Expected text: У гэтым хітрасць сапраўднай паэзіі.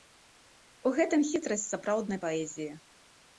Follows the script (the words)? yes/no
yes